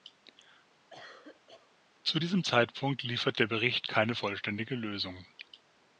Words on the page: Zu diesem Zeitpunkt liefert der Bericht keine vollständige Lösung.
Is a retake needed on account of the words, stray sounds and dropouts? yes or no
yes